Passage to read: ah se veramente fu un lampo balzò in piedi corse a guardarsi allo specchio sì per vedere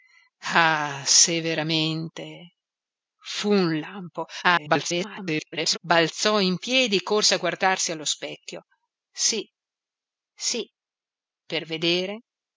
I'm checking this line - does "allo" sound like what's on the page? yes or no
yes